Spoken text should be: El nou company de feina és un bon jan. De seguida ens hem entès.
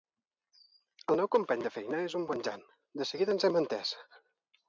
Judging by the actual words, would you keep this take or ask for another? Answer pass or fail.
pass